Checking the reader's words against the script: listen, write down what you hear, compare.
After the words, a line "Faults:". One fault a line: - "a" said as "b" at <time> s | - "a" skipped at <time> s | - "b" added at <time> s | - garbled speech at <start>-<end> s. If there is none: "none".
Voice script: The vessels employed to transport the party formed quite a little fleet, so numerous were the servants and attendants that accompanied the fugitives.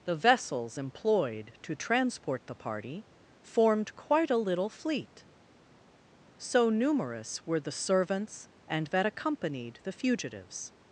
The vessels employed to transport the party formed quite a little fleet, so numerous were the servants and that accompanied the fugitives.
Faults:
- "attendants" skipped at 8.9 s